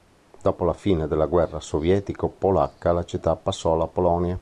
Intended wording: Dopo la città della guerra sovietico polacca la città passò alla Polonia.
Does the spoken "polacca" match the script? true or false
true